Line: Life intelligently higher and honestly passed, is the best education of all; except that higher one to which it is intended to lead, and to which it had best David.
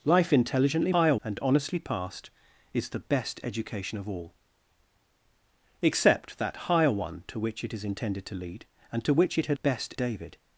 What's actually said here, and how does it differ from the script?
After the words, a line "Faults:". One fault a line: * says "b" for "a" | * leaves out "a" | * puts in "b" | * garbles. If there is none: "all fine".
Life intelligently higher and honestly passed, is the best education of all; except that higher one to which it is intended to lead, and to which it had best David.
Faults:
all fine